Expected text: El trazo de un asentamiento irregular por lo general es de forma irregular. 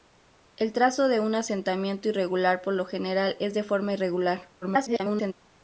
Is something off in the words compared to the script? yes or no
yes